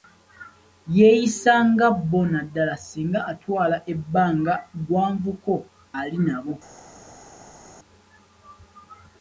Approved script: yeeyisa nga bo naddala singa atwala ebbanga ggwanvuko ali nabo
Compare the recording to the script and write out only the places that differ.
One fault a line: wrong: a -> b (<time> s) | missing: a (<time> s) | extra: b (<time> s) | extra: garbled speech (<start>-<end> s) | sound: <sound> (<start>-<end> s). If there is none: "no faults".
no faults